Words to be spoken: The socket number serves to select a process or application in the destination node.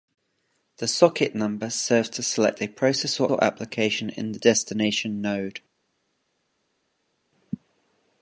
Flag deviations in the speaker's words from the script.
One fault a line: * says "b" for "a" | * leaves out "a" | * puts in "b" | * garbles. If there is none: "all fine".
* puts in "or"